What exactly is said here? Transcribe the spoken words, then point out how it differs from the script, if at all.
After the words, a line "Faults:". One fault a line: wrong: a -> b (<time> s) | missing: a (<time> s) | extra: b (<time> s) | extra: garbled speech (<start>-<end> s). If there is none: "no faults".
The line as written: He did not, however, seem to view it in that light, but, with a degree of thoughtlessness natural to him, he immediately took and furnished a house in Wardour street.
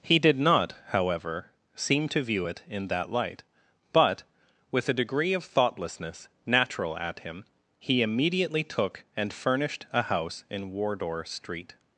He did not, however, seem to view it in that light, but, with a degree of thoughtlessness natural at him, he immediately took and furnished a house in Wardour street.
Faults:
wrong: to -> at (7.0 s)